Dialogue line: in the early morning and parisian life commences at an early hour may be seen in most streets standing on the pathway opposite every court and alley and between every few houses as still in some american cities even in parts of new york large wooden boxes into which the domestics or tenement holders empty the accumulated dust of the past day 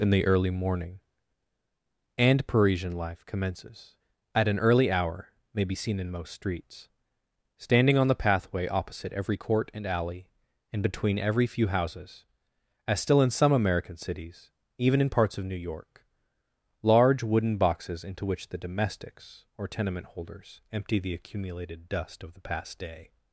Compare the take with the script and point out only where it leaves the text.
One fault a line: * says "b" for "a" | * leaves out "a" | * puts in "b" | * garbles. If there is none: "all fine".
all fine